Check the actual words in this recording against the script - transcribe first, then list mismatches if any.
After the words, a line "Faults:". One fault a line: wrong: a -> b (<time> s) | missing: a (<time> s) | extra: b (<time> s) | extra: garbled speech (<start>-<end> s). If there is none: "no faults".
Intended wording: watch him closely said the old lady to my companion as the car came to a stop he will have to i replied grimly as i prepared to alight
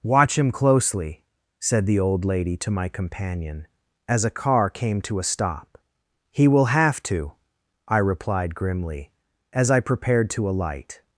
watch him closely said the old lady to my companion as a car came to a stop he will have to i replied grimly as i prepared to alight
Faults:
wrong: the -> a (4.2 s)